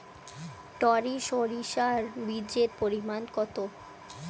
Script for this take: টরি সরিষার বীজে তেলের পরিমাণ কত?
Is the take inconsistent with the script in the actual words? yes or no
yes